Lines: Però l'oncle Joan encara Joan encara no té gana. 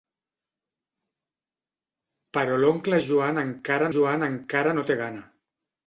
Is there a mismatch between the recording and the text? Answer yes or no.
no